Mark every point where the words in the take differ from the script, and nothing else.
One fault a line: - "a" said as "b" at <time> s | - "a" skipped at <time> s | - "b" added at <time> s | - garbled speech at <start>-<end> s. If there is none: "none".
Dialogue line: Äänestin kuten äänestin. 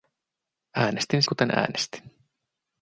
none